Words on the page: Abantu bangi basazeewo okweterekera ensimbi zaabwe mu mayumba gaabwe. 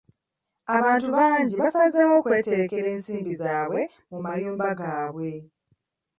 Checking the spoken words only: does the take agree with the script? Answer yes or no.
yes